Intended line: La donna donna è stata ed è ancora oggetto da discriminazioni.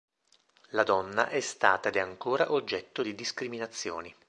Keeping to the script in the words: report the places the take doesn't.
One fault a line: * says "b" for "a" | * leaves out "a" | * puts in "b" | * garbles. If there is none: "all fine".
* leaves out "donna"
* says "di" for "da"